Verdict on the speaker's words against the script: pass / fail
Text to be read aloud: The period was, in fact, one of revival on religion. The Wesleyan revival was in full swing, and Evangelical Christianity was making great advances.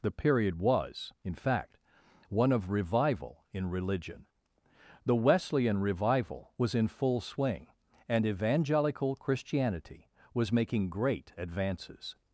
fail